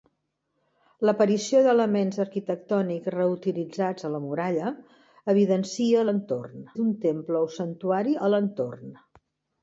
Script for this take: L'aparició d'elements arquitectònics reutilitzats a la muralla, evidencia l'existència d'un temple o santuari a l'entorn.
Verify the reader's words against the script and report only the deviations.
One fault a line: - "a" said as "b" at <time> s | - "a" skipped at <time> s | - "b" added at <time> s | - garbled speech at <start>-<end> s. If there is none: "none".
- "l'existència" said as "l'entorn" at 6.1 s